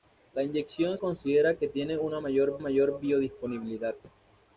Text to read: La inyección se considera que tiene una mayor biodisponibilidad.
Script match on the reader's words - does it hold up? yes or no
no